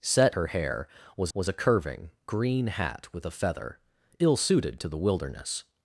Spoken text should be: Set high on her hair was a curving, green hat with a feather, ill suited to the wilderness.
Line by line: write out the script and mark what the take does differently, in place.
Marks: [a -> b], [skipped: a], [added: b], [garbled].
Set [skipped: high on] her hair was [added: was] a curving, green hat with a feather, ill suited to the wilderness.